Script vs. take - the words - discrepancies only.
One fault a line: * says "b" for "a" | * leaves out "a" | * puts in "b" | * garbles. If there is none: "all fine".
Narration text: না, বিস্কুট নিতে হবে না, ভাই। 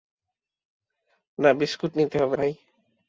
* leaves out "না"